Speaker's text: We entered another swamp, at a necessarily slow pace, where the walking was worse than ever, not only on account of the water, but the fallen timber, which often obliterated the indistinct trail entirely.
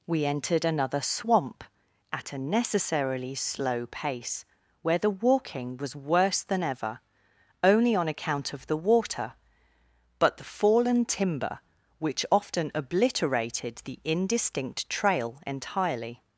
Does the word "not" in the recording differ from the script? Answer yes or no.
yes